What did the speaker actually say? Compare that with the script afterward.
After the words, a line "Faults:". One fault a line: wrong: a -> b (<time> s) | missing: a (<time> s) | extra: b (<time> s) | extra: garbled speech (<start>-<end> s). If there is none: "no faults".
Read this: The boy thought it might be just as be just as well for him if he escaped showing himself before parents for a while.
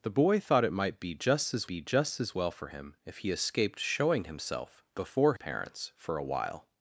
The boy thought it might be just as be just as well for him if he escaped showing himself before parents for a while.
Faults:
no faults